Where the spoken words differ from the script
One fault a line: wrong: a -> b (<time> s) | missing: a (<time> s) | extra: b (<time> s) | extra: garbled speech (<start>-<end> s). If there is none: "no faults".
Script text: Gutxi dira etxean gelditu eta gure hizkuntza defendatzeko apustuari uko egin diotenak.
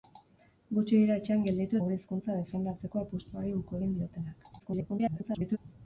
missing: eta (1.8 s)
extra: garbled speech (4.6-5.6 s)